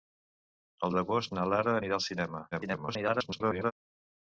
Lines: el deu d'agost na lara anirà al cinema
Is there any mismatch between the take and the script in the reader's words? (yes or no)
yes